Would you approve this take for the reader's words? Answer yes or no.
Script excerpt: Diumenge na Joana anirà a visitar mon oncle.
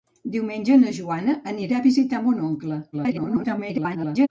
no